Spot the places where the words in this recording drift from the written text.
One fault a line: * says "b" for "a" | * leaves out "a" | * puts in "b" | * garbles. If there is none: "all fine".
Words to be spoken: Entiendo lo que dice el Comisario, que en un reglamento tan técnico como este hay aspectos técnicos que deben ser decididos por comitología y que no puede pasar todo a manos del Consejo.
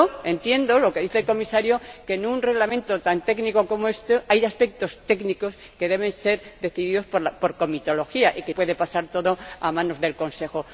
* leaves out "no"